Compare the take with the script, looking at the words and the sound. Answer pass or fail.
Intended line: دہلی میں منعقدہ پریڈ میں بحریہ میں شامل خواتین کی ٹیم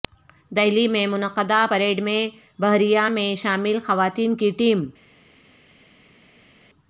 pass